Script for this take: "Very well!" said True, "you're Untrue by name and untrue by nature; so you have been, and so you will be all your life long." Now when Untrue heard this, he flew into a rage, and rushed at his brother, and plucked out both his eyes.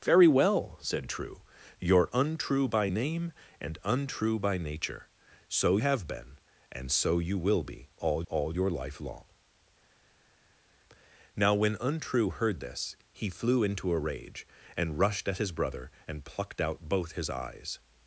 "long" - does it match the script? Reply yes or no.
yes